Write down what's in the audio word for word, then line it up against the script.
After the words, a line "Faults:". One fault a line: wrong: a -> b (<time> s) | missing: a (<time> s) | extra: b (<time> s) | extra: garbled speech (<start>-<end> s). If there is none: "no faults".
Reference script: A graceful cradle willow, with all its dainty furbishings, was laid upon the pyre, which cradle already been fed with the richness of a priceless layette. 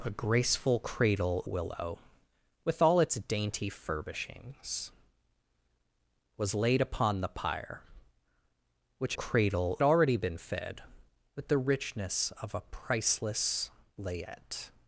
A graceful cradle willow, with all its dainty furbishings, was laid upon the pyre, which cradle already been fed with the richness of a priceless layette.
Faults:
no faults